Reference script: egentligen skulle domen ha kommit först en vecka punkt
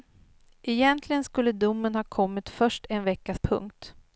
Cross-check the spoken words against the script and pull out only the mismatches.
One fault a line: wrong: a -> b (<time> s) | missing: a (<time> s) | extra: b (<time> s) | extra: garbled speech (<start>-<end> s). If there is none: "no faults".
no faults